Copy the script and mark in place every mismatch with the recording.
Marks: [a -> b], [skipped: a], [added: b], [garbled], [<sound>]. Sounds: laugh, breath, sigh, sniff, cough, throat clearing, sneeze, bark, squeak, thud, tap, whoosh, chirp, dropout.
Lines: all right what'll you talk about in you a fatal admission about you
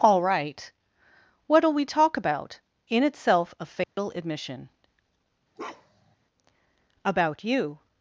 all right what'll [you -> we] talk about in [you -> itself] a fatal [dropout] admission [bark] about you